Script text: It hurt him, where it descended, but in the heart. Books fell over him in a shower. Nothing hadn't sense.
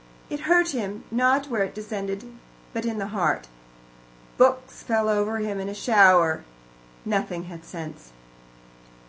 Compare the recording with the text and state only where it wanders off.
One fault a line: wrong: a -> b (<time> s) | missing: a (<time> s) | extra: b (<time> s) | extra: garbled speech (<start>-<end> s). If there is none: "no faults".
extra: not (1.1 s)
wrong: hadn't -> had (7.5 s)